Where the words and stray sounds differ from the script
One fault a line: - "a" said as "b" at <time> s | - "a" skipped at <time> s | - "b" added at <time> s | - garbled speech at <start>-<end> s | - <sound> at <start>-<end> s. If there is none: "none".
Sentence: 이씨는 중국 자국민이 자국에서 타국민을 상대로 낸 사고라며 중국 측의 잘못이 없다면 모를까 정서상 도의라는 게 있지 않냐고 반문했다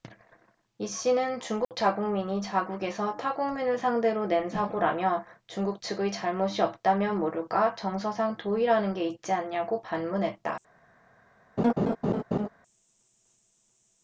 - dropout at 1.6-1.7 s
- laugh at 11.6-12.5 s